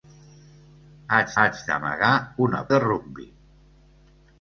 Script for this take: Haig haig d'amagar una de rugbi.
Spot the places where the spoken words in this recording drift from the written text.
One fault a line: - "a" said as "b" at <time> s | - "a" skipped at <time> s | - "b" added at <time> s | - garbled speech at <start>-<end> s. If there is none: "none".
none